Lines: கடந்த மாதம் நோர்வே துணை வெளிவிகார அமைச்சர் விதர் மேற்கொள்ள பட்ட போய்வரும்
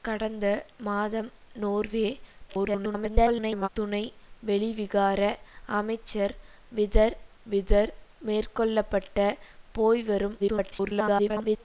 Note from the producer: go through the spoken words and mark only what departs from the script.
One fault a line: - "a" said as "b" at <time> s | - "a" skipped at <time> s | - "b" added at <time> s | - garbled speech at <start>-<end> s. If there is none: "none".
- garbled speech at 2.5-3.7 s
- "விதர்" added at 7.5 s
- garbled speech at 10.4-11.6 s